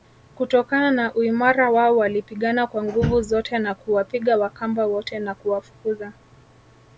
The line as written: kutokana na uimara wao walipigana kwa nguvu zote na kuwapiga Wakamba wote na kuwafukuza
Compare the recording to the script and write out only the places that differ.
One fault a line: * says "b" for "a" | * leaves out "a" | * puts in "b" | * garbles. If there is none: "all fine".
all fine